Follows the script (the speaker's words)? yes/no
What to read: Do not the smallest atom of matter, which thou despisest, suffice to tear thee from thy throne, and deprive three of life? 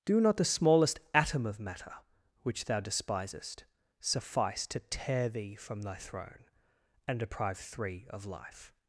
yes